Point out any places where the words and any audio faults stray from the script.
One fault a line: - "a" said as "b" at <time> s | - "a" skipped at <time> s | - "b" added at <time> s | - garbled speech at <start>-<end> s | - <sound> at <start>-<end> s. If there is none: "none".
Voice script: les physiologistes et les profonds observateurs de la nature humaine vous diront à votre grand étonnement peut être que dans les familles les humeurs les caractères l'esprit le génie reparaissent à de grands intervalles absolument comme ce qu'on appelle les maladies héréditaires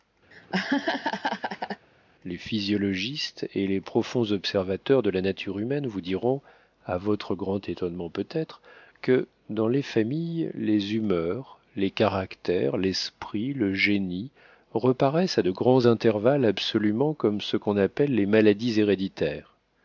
- laugh at 0.3-1.9 s